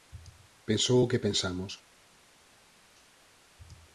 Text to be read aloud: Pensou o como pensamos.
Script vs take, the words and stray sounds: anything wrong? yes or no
yes